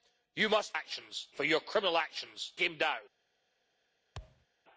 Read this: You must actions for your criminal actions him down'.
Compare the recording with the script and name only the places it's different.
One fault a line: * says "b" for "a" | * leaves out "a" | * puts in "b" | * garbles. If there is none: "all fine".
all fine